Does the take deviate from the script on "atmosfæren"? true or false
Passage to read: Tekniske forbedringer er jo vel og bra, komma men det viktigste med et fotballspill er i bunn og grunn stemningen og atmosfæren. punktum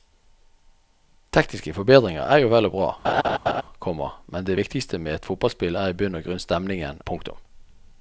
true